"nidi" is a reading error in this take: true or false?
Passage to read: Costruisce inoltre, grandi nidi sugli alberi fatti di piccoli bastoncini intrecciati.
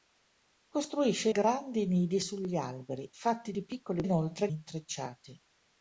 false